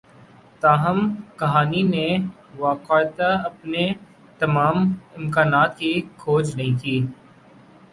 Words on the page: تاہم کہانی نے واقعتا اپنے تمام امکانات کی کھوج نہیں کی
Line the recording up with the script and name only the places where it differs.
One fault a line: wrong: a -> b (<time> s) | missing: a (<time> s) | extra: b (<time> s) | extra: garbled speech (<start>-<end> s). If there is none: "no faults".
no faults